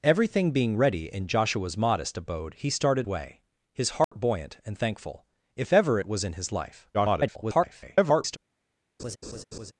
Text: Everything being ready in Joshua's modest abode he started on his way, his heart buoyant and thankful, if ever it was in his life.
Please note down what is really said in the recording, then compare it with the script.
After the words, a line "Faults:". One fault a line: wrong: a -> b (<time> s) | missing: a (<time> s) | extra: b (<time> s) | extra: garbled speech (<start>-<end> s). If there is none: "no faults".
Everything being ready in Joshua's modest abode he started way, his heart buoyant and thankful, if ever it was in his life. [garbled]
Faults:
missing: on his (3.1 s)
extra: garbled speech (6.9-8.4 s)